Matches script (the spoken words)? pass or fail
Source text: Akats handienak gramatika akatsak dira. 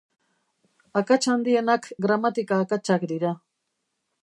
pass